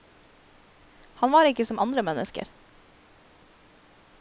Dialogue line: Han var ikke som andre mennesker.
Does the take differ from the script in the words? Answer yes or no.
no